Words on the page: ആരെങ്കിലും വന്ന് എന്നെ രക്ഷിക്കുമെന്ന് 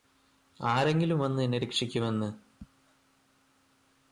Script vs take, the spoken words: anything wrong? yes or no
no